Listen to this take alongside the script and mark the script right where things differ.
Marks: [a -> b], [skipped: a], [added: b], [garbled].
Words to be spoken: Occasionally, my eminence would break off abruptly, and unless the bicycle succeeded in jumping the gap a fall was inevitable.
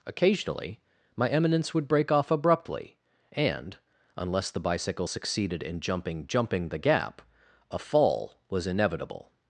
Occasionally, my eminence would break off abruptly, and unless the bicycle succeeded in jumping [added: jumping] the gap a fall was inevitable.